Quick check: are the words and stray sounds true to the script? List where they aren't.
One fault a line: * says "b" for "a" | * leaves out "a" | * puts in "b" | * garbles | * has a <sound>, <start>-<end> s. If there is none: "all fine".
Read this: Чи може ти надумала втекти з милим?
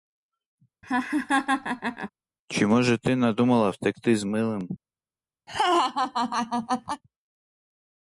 * has a laugh, 0.8-2.1 s
* has a laugh, 5.5-7.0 s